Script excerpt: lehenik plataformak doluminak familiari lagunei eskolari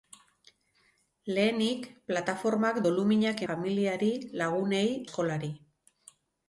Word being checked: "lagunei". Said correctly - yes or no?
yes